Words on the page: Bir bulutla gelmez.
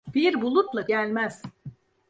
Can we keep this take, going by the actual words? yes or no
yes